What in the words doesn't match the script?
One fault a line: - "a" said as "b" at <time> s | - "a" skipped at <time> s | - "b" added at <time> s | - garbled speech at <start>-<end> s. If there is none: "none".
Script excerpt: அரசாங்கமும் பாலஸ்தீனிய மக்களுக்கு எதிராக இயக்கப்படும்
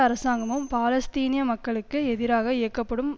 none